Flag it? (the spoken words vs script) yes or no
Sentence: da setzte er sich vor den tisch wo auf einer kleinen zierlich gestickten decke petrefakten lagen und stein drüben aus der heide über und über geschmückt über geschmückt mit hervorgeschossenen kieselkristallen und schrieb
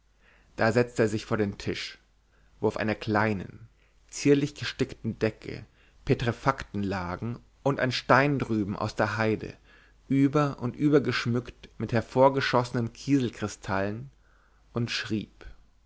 yes